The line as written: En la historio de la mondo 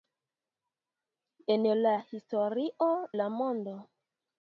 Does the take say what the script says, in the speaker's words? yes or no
no